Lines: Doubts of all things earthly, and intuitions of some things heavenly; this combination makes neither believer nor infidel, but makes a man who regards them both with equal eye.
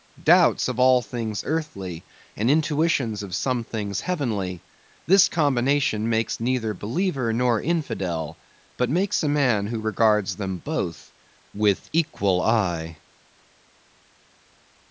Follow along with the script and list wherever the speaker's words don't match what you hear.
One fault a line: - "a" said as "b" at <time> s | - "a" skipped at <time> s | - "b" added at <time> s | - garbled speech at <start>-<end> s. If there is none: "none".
none